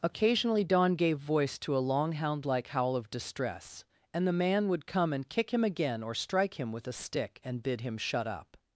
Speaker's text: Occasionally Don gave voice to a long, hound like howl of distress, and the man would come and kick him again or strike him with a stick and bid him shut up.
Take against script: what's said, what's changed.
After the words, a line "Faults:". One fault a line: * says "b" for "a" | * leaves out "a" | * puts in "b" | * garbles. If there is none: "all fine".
Occasionally Don gave voice to a long, hound like howl of distress, and the man would come and kick him again or strike him with a stick and bid him shut up.
Faults:
all fine